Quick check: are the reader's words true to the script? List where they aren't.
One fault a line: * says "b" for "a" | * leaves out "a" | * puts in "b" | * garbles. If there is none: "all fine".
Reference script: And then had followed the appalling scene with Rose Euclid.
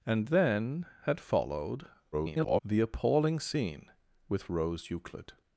* garbles